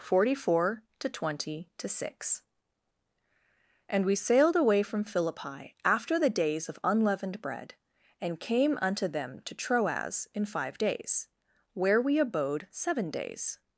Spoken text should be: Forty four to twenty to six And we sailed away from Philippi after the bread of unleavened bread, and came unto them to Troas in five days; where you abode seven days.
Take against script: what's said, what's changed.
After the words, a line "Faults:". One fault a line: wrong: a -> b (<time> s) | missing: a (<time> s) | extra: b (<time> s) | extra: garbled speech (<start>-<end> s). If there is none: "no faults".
Forty four to twenty to six And we sailed away from Philippi after the days of unleavened bread, and came unto them to Troas in five days; where we abode seven days.
Faults:
wrong: bread -> days (6.3 s)
wrong: you -> we (12.0 s)